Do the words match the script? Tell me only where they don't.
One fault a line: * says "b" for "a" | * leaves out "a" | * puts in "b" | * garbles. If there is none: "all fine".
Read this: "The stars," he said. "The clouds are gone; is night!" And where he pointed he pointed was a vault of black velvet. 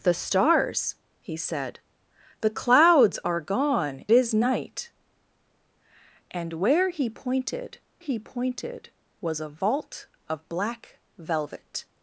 all fine